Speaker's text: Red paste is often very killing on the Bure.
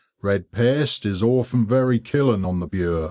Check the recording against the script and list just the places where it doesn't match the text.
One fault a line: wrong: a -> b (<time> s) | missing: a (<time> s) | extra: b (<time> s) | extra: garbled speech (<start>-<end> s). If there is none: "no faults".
no faults